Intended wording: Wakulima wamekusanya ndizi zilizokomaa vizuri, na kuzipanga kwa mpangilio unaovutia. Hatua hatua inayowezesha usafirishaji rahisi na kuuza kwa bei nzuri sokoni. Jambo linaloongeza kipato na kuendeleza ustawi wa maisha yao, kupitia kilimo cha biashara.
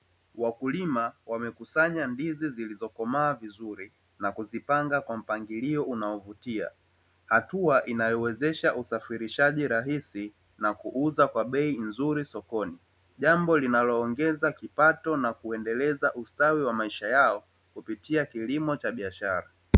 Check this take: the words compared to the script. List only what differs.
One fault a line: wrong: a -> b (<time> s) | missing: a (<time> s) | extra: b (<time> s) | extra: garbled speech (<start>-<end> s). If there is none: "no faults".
missing: hatua (7.9 s)